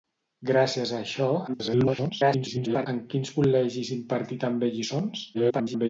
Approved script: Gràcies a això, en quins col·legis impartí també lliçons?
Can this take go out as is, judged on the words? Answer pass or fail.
fail